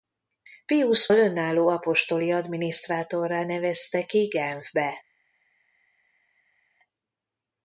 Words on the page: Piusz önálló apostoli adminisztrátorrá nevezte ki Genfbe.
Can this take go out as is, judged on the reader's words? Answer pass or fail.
pass